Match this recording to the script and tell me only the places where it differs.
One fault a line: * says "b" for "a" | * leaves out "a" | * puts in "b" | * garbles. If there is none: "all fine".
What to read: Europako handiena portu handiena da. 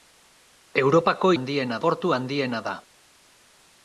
all fine